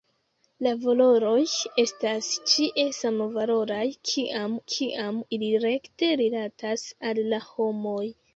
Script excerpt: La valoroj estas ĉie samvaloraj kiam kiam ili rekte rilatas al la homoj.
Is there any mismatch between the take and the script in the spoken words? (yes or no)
no